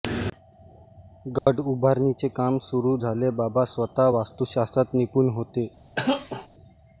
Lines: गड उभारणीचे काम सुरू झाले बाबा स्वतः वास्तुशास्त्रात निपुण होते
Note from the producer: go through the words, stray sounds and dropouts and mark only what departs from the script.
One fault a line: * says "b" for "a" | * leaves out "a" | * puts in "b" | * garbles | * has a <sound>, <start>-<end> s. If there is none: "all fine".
* has a dropout, 1.4-1.5 s
* has a cough, 6.0-6.5 s